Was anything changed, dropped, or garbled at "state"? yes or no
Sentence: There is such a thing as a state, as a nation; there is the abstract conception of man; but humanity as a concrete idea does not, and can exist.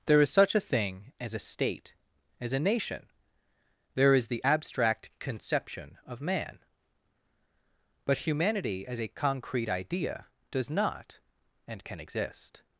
no